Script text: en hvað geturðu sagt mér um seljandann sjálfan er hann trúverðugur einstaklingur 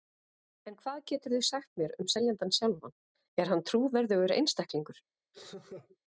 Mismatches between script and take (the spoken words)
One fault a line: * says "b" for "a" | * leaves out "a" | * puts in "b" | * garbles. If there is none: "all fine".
all fine